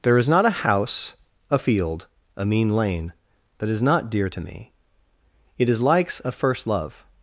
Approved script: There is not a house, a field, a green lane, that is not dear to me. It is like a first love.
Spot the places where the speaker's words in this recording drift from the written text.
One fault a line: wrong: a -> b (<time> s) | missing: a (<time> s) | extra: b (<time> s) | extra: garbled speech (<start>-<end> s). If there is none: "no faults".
wrong: green -> mean (2.5 s)
wrong: like -> likes (5.8 s)